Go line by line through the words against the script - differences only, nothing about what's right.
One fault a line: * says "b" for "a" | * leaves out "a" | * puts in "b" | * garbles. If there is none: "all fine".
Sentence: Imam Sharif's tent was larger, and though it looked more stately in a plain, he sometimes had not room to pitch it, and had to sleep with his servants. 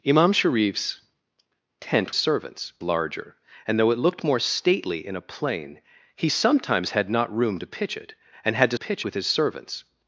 * says "servants" for "was"
* says "pitch" for "sleep"